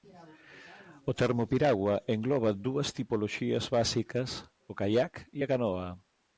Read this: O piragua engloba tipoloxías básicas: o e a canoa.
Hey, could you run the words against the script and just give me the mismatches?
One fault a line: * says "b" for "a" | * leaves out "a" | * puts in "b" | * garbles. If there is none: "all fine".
* puts in "termo"
* puts in "dúas"
* puts in "caiac"